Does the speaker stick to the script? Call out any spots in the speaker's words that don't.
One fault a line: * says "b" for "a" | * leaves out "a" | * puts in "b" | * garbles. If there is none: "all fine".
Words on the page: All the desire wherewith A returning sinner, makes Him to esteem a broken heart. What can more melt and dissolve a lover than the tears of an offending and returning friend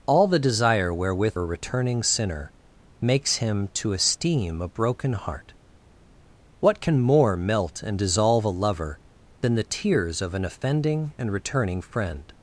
all fine